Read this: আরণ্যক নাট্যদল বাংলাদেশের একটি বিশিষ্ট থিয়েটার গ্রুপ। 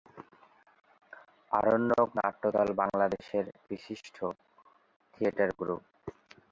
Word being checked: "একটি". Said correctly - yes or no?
no